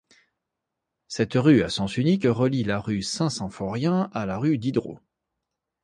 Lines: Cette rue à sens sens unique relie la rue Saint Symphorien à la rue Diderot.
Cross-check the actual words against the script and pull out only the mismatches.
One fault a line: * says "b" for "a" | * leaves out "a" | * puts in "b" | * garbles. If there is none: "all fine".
* leaves out "sens"